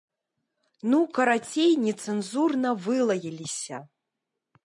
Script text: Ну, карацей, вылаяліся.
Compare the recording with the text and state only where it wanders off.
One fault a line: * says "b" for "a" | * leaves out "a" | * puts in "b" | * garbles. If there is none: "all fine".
* puts in "нецэнзурна"